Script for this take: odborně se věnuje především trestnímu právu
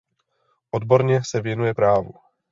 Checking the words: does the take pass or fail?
fail